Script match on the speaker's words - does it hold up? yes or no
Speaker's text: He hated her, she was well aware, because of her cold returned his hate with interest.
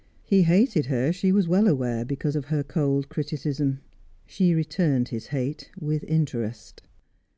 no